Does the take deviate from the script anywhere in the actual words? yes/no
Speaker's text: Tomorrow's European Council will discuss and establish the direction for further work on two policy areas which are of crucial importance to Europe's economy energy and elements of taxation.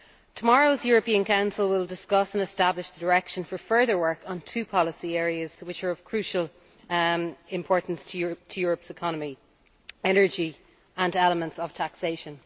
no